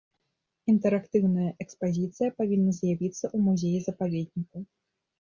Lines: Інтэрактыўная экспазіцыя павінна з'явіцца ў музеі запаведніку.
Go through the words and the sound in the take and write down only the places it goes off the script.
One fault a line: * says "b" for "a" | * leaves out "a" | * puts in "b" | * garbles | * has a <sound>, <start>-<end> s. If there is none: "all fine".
all fine